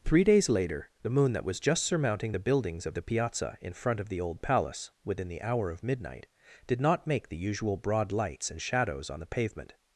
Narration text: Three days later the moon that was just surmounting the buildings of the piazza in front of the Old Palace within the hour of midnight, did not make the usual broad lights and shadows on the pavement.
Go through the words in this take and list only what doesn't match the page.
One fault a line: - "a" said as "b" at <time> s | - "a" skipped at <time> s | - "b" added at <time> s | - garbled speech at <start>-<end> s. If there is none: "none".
none